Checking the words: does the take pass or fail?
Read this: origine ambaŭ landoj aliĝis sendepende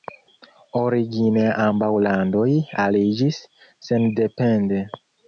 pass